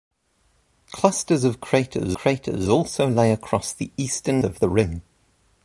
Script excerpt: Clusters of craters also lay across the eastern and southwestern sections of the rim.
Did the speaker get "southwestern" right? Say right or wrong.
wrong